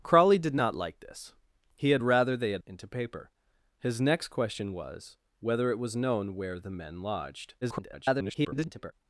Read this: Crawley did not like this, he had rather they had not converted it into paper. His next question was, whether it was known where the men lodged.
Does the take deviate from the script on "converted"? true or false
true